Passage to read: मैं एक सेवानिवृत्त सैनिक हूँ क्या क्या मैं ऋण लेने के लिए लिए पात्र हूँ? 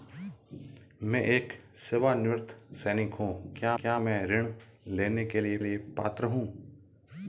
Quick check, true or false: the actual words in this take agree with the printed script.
true